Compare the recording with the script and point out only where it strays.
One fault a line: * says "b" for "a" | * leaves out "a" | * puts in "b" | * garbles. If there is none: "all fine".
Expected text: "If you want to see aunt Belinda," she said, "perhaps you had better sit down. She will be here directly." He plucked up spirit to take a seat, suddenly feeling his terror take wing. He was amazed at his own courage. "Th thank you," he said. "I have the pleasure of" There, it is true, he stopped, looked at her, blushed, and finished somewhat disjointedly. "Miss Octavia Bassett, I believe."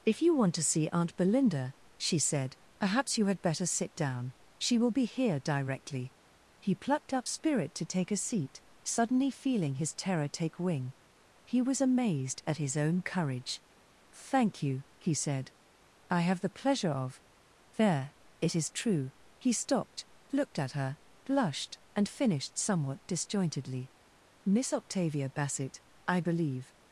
* leaves out "Th"